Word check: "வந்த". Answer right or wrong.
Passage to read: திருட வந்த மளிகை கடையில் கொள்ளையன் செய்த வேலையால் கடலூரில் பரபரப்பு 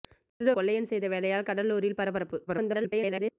wrong